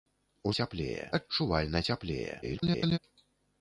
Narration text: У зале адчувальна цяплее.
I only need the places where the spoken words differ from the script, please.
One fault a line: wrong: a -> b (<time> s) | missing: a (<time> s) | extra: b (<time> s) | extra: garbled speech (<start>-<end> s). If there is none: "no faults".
wrong: зале -> цяплее (0.6 s)
extra: garbled speech (2.4-3.0 s)